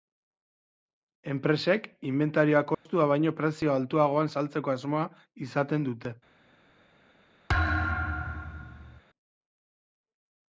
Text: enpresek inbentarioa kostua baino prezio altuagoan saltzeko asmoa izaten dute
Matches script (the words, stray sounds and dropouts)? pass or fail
fail